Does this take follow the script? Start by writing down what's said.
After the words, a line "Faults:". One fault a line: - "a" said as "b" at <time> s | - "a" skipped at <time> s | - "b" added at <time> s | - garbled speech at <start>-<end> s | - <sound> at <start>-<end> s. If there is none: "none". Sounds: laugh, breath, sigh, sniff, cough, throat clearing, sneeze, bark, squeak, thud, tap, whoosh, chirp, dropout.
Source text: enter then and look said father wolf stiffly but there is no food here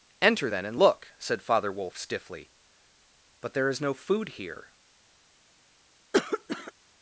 enter then and look said father wolf stiffly but there is no food here
Faults:
- cough at 6.1-6.7 s